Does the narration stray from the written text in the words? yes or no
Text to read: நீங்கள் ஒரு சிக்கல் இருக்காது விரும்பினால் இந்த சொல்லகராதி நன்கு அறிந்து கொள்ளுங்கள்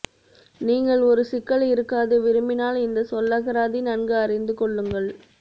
no